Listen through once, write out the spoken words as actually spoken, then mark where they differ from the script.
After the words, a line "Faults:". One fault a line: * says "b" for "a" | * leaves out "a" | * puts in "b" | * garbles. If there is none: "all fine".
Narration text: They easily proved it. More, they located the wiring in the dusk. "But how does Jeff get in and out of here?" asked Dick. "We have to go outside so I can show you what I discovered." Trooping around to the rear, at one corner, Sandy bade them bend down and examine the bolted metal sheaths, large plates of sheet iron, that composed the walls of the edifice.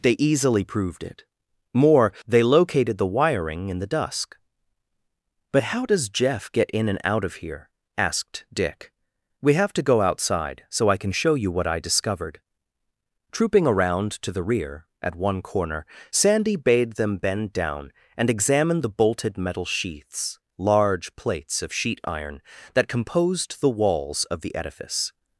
They easily proved it. More, they located the wiring in the dusk. "But how does Jeff get in and out of here?" asked Dick. "We have to go outside so I can show you what I discovered." Trooping around to the rear, at one corner, Sandy bade them bend down and examine the bolted metal sheaths, large plates of sheet iron, that composed the walls of the edifice.
Faults:
all fine